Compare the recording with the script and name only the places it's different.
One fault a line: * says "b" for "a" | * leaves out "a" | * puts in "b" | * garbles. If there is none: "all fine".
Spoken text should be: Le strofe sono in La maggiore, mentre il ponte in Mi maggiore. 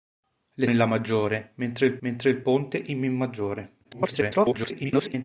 * leaves out "strofe sono"
* puts in "mentre il"
* garbles